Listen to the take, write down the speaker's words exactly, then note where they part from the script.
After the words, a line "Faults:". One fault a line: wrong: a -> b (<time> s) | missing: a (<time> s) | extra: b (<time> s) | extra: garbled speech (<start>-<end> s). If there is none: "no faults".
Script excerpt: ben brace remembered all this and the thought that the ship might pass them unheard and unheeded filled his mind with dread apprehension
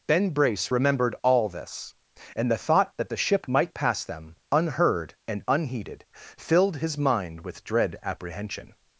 ben brace remembered all this and the thought that the ship might pass them unheard and unheeded filled his mind with dread apprehension
Faults:
no faults